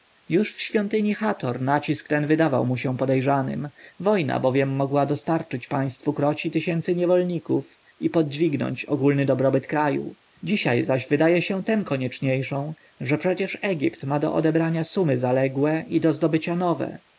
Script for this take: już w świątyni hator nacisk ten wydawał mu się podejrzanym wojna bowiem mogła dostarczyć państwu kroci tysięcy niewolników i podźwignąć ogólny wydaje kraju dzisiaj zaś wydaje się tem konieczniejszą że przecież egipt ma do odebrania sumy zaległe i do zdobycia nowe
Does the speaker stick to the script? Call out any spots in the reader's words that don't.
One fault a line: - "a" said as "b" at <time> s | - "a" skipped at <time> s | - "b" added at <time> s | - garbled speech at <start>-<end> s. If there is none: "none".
- "wydaje" said as "dobrobyt" at 9.2 s